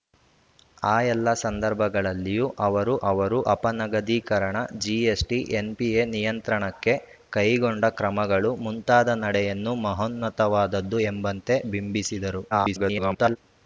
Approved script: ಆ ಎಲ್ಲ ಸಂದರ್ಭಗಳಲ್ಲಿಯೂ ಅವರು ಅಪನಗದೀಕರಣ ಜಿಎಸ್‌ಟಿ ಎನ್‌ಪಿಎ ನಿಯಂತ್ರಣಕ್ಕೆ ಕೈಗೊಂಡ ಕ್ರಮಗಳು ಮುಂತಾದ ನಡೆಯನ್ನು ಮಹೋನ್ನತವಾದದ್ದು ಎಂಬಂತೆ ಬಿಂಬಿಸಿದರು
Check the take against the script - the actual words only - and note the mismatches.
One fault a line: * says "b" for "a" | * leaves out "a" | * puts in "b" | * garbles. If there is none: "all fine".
* puts in "ಅವರು"
* garbles